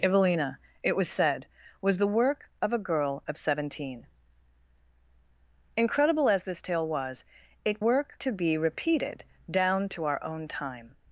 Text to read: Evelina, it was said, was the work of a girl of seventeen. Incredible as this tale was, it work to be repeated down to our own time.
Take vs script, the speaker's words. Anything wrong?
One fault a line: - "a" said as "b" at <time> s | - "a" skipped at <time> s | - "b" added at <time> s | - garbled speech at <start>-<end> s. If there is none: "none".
none